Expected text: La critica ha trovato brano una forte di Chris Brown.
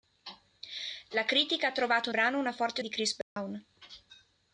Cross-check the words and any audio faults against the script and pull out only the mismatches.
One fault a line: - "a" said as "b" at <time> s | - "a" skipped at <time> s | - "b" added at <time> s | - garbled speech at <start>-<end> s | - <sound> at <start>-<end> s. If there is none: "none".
- dropout at 3.2-3.4 s